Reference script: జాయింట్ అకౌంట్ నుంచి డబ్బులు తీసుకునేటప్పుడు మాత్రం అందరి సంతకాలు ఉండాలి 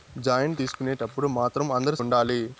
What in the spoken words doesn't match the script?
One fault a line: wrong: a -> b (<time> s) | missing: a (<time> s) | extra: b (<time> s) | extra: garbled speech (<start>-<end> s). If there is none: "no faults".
missing: అకౌంట్ నుంచి డబ్బులు (0.6 s)
missing: సంతకాలు (2.0 s)